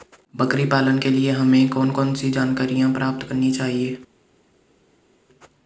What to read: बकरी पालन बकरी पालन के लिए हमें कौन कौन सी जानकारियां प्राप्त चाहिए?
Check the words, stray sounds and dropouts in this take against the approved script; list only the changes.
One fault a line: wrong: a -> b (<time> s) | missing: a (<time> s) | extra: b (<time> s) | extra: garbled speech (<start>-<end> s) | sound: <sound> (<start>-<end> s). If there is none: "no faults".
missing: बकरी पालन (1.0 s)
extra: करनी (3.3 s)